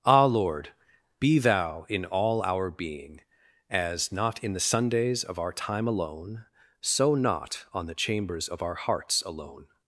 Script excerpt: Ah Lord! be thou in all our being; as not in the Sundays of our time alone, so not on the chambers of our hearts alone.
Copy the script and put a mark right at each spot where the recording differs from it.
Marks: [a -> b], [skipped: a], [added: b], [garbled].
Ah Lord! be thou in all our being; as not in the Sundays of our time alone, so not on the chambers of our hearts alone.